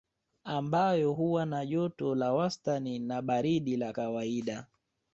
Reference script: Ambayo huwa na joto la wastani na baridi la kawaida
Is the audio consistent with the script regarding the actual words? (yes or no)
yes